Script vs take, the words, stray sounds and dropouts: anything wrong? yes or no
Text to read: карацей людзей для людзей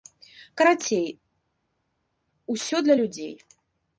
yes